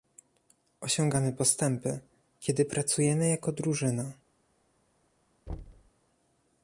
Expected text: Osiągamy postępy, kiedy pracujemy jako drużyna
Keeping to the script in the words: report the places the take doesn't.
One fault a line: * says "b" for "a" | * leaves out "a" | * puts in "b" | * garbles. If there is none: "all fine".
all fine